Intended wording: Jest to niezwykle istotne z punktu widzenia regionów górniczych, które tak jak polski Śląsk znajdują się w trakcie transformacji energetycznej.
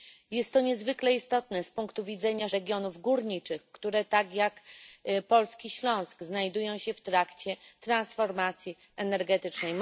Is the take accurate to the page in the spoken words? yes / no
yes